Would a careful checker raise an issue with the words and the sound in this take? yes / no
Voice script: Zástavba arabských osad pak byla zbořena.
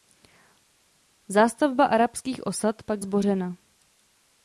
yes